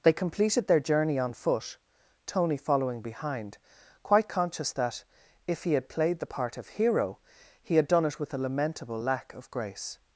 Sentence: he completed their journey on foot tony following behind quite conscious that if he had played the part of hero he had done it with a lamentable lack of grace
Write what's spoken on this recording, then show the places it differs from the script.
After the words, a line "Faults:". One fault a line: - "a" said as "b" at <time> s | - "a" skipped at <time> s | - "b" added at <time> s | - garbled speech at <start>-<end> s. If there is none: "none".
they completed their journey on foot tony following behind quite conscious that if he had played the part of hero he had done it with a lamentable lack of grace
Faults:
- "he" said as "they" at 0.0 s